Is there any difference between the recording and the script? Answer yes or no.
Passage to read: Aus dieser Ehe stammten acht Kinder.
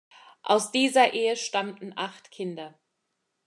no